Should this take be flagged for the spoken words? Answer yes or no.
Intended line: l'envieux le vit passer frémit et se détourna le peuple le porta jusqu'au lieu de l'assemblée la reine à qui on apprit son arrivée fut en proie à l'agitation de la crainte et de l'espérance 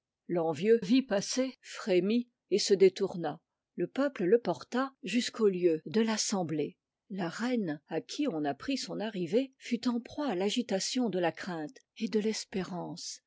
yes